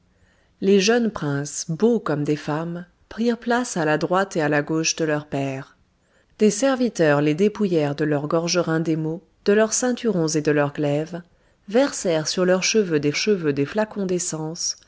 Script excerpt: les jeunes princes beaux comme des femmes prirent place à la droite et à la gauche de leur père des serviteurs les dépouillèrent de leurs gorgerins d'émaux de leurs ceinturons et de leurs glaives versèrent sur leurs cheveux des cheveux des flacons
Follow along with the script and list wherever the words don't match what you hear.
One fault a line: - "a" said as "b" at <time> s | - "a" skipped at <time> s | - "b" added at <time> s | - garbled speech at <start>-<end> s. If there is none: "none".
none